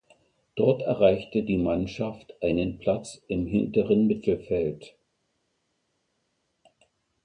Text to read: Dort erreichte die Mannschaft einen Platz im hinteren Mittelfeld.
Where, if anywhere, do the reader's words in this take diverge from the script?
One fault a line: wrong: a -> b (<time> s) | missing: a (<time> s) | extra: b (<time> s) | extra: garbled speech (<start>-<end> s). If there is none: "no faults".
no faults